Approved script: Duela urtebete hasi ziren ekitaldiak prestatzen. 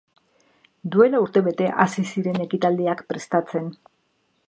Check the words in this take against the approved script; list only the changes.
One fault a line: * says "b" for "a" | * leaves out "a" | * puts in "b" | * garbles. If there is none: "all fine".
all fine